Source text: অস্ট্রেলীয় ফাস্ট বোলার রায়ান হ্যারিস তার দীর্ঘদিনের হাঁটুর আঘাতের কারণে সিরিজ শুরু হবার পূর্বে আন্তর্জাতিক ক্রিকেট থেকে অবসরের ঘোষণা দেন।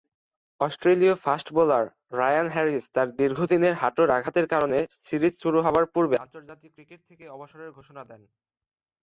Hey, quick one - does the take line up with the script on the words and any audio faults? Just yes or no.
yes